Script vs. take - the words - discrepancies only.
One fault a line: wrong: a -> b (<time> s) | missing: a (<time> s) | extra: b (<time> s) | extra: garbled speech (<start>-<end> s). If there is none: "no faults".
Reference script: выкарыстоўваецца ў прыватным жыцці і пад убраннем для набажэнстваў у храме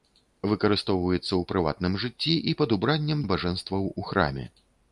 missing: для (3.2 s)